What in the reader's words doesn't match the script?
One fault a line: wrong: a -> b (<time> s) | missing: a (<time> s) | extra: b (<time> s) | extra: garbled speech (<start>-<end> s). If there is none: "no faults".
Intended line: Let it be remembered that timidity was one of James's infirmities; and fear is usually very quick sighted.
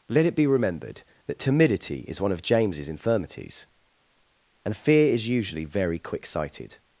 wrong: was -> is (2.1 s)